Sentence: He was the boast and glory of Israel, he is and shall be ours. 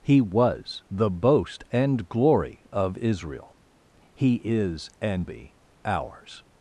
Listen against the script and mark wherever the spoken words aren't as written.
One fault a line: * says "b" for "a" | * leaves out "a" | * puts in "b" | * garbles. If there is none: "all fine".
* leaves out "shall"